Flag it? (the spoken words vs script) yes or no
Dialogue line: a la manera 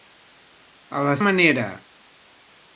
no